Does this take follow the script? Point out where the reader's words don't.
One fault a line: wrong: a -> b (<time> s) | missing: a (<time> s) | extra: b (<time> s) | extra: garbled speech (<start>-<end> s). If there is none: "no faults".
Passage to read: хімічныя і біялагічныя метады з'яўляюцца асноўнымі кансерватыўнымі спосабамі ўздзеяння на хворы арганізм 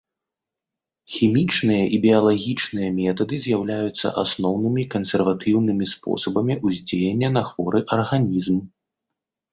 no faults